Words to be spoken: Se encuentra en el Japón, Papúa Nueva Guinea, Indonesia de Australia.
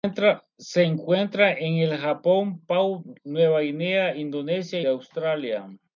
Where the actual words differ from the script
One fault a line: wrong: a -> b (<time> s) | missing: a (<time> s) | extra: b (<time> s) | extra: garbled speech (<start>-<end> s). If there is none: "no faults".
no faults